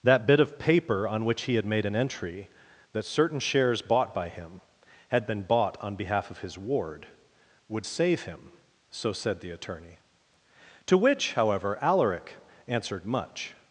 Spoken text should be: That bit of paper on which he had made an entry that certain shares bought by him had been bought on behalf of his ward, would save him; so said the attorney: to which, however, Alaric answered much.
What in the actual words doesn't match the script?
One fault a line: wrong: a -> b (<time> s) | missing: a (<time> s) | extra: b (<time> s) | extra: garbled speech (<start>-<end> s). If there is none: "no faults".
no faults